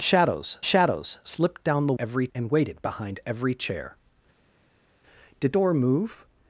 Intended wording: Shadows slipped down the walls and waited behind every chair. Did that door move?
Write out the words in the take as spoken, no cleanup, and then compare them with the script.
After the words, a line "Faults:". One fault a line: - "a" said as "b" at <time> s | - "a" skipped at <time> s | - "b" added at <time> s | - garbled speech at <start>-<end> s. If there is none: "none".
Shadows shadows slipped down the every and waited behind every chair. Did door move?
Faults:
- "shadows" added at 0.6 s
- "walls" said as "every" at 2.0 s
- "that" skipped at 5.5 s